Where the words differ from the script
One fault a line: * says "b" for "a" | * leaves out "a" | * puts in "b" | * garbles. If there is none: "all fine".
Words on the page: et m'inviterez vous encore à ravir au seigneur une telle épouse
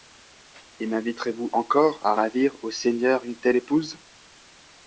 all fine